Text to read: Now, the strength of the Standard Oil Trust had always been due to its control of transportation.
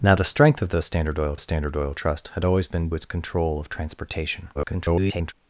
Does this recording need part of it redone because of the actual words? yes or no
yes